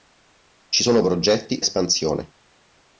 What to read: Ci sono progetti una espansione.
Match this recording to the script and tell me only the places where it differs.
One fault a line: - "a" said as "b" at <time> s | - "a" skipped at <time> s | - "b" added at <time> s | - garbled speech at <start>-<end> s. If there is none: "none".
- "una" skipped at 1.6 s